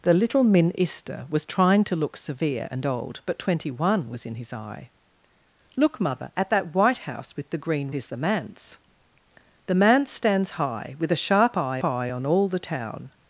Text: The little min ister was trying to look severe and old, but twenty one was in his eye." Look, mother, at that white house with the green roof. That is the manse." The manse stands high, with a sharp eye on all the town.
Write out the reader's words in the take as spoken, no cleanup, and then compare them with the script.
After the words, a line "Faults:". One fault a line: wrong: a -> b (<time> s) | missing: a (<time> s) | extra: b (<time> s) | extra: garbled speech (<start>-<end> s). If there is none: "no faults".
The little min ister was trying to look severe and old, but twenty one was in his eye." Look, mother, at that white house with the green is the manse." The manse stands high, with a sharp eye eye on all the town.
Faults:
missing: roof That (7.9 s)
extra: eye (11.8 s)